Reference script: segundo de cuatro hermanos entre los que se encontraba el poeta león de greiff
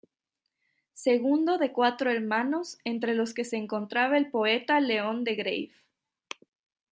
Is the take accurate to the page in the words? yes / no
yes